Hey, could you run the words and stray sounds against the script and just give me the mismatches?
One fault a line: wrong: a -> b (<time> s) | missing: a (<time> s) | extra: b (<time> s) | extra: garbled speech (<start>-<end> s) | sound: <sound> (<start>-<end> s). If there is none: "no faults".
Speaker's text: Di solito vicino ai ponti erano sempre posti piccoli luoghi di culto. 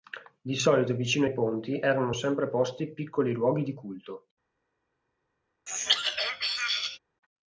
sound: throat clearing (5.7-7.0 s)